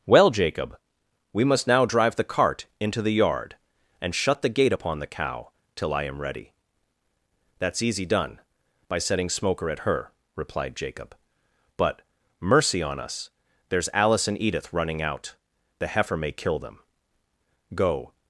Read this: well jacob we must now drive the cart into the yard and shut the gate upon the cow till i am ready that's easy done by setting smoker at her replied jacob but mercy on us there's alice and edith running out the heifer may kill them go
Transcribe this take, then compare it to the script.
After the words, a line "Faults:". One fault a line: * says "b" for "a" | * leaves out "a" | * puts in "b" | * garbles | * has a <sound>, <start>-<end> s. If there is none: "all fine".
well jacob we must now drive the cart into the yard and shut the gate upon the cow till i am ready that's easy done by setting smoker at her replied jacob but mercy on us there's alice and edith running out the heifer may kill them go
Faults:
all fine